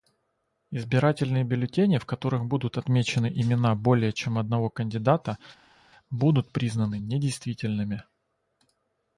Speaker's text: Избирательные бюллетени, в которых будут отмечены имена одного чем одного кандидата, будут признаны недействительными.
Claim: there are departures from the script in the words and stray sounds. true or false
true